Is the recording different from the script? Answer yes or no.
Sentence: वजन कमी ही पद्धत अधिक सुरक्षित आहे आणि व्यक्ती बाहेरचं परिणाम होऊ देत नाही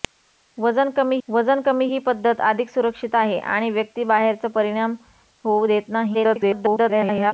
yes